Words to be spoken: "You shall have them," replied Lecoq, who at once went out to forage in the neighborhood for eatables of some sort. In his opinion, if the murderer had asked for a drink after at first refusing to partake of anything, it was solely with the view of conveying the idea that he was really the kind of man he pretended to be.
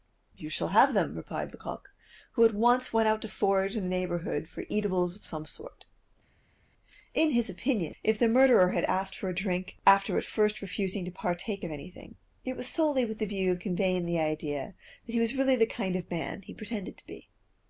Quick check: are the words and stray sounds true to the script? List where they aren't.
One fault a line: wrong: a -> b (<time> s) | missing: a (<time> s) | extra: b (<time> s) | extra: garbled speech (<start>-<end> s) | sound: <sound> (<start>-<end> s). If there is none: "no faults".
no faults